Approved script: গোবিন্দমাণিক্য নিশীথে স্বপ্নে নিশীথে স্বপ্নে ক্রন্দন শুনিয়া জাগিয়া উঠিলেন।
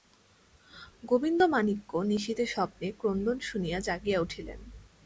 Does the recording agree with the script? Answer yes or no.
no